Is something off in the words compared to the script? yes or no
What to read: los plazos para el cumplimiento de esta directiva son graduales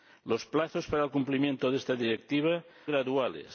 yes